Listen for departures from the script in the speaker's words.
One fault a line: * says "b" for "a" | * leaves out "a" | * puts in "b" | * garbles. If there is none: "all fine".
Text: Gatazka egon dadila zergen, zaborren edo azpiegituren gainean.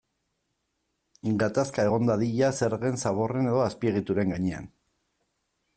all fine